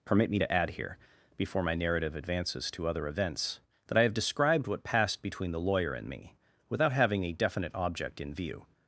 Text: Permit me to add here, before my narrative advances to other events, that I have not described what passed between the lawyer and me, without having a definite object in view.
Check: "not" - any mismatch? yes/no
yes